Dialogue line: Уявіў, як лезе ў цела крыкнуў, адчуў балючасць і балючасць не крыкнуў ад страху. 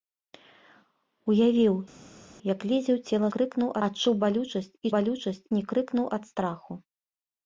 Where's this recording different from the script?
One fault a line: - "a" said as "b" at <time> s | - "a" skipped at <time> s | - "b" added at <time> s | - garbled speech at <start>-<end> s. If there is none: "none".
none